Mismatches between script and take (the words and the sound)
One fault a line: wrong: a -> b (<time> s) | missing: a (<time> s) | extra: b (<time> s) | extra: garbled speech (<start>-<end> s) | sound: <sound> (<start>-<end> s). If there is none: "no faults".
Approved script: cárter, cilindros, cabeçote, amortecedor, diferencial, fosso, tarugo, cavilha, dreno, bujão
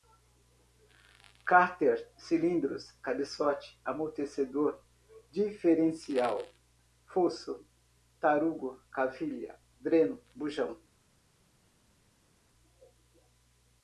no faults